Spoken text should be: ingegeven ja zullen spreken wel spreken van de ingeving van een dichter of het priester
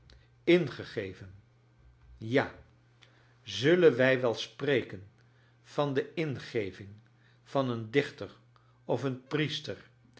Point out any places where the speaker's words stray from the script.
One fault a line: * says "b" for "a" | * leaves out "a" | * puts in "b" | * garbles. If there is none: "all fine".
* says "wij" for "spreken"
* says "een" for "het"